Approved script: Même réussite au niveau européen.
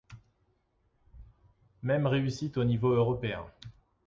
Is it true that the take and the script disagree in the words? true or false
false